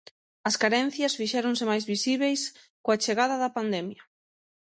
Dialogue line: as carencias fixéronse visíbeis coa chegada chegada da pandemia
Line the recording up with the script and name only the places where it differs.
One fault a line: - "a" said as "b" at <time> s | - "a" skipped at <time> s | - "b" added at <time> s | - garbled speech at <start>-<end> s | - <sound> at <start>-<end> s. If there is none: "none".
- "máis" added at 1.7 s
- "chegada" skipped at 3.4 s